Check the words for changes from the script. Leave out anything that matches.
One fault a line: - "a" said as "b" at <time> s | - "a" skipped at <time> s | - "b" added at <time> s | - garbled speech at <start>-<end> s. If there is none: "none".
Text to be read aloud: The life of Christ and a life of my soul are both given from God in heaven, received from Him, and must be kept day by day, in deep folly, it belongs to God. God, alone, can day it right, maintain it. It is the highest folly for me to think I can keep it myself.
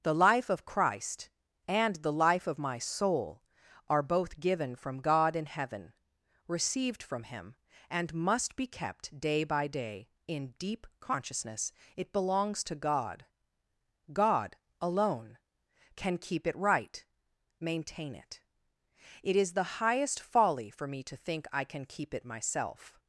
- "a" said as "the" at 2.0 s
- "folly" said as "consciousness" at 11.0 s
- "day" said as "keep" at 16.2 s